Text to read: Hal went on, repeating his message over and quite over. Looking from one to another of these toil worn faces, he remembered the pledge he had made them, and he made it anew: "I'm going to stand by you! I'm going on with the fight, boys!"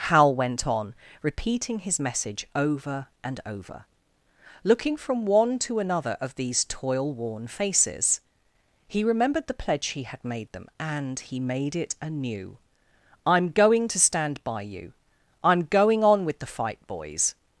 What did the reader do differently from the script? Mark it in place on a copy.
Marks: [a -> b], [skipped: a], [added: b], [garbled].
Hal went on, repeating his message over and [skipped: quite] over. Looking from one to another of these toil worn faces, he remembered the pledge he had made them, and he made it anew: "I'm going to stand by you! I'm going on with the fight, boys!"